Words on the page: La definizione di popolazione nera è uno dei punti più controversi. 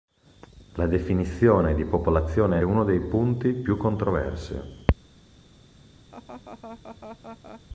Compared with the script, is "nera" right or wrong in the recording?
wrong